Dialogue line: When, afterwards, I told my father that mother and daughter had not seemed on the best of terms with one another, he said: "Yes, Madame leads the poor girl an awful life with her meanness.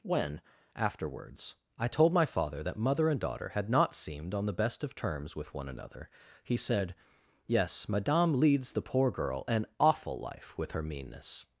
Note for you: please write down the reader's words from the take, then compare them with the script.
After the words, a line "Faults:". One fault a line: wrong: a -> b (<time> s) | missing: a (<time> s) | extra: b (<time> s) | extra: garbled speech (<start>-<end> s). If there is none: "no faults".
When, afterwards, I told my father that mother and daughter had not seemed on the best of terms with one another, he said: "Yes, Madame leads the poor girl an awful life with her meanness.
Faults:
no faults